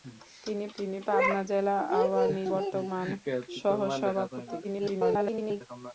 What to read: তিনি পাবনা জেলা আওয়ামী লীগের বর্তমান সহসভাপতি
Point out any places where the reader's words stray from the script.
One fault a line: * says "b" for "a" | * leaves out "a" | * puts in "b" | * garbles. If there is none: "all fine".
* puts in "তিনি"
* leaves out "লীগের"
* garbles